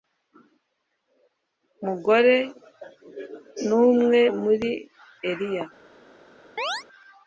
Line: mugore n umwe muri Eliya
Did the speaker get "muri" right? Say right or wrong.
right